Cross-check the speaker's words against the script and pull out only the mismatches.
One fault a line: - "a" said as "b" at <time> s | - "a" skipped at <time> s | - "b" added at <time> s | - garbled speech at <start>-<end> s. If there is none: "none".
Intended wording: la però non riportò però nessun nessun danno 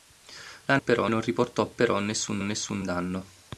none